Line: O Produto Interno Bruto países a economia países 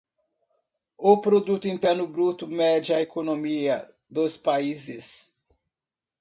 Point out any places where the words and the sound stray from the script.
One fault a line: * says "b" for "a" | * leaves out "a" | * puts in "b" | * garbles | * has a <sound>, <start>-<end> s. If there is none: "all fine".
* says "mede" for "países"
* puts in "dos"